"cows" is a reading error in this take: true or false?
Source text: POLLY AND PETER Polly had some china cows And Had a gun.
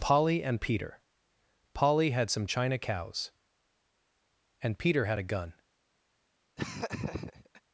false